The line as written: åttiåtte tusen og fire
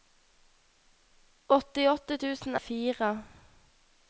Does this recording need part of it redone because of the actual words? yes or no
no